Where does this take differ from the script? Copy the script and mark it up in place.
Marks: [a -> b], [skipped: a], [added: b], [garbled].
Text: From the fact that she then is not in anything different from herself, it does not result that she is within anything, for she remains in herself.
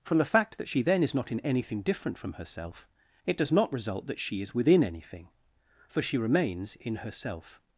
From the fact that she then is not in anything different from herself, it does not result that she is within anything, for she remains in herself.